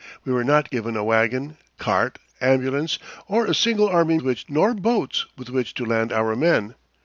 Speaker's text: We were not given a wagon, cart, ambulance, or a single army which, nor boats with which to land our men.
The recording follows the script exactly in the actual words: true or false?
true